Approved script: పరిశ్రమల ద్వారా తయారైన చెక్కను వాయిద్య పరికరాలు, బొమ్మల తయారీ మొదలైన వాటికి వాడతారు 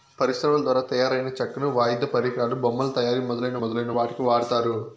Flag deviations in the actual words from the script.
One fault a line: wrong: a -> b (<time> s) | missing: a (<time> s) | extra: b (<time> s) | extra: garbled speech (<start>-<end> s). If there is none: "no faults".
extra: మొదలైన (3.6 s)